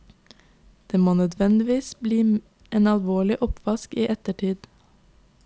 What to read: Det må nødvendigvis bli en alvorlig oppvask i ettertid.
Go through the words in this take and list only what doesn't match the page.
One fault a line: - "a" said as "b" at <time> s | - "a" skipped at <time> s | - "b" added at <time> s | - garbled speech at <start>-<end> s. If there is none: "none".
none